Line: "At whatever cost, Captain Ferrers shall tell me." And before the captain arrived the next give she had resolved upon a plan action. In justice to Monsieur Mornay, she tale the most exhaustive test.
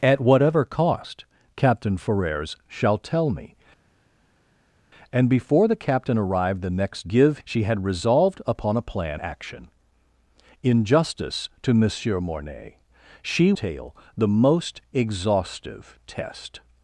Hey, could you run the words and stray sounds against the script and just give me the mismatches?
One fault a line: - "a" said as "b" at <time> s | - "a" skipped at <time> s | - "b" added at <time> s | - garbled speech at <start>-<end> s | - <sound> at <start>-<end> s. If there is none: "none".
none